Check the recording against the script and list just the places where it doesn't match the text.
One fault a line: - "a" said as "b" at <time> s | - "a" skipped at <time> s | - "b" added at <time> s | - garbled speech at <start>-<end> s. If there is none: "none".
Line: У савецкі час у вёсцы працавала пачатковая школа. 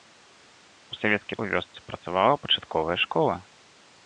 - "час" skipped at 1.4 s